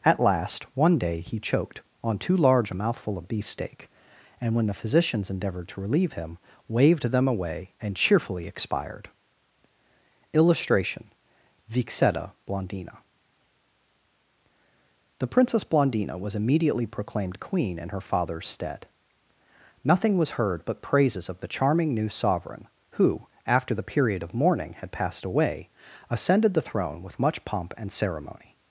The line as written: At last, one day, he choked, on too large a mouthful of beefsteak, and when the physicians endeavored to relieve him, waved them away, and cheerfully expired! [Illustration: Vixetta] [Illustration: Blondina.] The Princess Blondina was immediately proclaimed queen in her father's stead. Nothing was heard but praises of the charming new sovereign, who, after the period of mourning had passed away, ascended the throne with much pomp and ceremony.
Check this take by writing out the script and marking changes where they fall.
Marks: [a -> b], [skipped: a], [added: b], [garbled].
At last, one day, he choked, on too large a mouthful of beefsteak, and when the physicians endeavored to relieve him, waved them away, and cheerfully expired! [Illustration: Vixetta] [skipped: [Illustration:] Blondina.] The Princess Blondina was immediately proclaimed queen in her father's stead. Nothing was heard but praises of the charming new sovereign, who, after the period of mourning had passed away, ascended the throne with much pomp and ceremony.